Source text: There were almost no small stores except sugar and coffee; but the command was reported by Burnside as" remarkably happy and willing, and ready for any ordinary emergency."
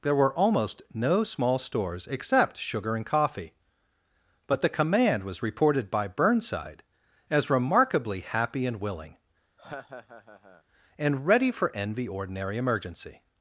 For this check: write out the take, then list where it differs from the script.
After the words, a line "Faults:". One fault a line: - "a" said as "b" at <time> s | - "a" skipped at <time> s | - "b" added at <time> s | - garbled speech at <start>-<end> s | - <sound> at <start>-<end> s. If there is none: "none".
There were almost no small stores except sugar and coffee; but the command was reported by Burnside as" remarkably happy and willing, and ready for envy ordinary emergency."
Faults:
- laugh at 9.6-10.6 s
- "any" said as "envy" at 11.8 s